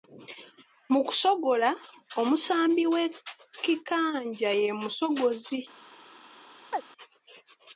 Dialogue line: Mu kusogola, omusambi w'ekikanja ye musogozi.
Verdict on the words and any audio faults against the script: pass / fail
fail